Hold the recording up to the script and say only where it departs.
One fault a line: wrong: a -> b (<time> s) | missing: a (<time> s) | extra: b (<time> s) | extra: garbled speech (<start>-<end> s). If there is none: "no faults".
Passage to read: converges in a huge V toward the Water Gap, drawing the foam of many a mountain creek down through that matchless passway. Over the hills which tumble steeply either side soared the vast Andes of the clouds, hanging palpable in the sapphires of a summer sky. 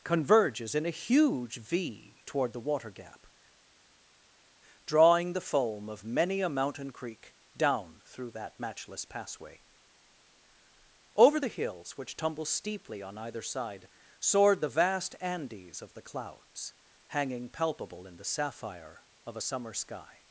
extra: on (13.0 s)
wrong: sapphires -> sapphire (18.2 s)